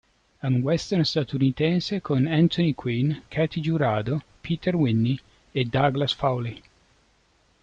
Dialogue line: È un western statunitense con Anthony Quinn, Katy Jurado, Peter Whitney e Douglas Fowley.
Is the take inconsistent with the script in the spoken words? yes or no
no